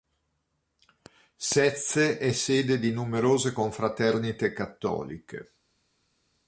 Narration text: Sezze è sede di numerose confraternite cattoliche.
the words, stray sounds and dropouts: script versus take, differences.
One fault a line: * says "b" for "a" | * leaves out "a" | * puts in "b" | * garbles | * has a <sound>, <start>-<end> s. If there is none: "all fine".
all fine